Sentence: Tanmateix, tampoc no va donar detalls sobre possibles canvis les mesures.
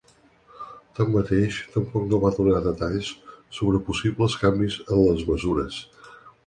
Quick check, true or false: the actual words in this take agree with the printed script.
false